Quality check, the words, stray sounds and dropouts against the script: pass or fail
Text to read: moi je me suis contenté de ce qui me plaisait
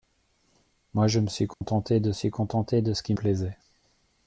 fail